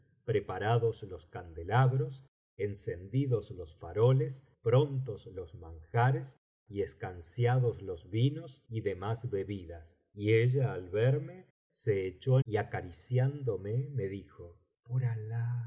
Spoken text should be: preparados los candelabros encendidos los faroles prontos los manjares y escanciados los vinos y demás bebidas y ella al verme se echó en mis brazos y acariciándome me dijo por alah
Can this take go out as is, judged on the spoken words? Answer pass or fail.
fail